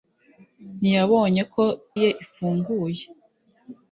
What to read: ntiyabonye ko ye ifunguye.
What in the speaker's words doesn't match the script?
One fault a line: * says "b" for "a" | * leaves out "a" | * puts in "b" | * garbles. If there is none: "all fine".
all fine